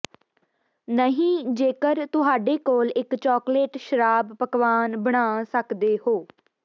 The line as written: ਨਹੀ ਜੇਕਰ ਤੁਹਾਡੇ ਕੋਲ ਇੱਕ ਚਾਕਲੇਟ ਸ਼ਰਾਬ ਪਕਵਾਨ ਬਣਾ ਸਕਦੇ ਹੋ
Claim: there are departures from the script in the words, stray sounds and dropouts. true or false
false